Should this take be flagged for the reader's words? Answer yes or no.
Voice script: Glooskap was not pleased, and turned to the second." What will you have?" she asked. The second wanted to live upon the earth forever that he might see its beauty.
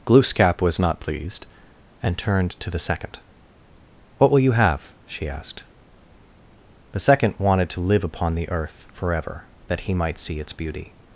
no